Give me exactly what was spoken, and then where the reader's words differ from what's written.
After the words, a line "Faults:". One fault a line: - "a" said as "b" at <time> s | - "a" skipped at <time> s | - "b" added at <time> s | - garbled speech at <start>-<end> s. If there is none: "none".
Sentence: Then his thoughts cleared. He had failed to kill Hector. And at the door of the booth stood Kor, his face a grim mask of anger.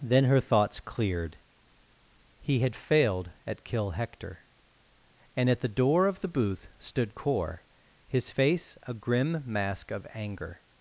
Then her thoughts cleared. He had failed at kill Hector. And at the door of the booth stood Kor, his face a grim mask of anger.
Faults:
- "his" said as "her" at 0.2 s
- "to" said as "at" at 3.5 s